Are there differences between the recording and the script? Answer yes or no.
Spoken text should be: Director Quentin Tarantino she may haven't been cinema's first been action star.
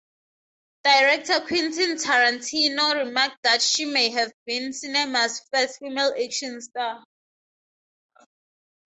yes